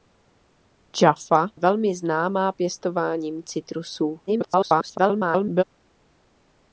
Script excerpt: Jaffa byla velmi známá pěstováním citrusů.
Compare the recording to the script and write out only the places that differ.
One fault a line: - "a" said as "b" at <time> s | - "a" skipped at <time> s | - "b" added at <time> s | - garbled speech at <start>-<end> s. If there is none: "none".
- "byla" skipped at 1.5 s
- garbled speech at 4.3-5.6 s